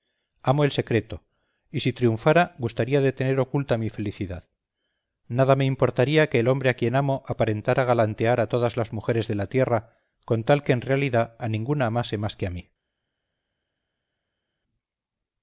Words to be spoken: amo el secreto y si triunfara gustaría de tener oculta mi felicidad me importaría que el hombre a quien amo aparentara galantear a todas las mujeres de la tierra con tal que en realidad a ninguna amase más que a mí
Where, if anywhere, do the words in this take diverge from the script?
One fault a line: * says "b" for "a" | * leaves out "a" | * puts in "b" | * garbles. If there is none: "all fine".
* puts in "nada"